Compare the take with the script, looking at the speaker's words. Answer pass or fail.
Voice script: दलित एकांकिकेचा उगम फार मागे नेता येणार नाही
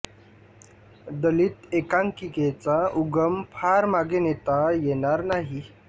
pass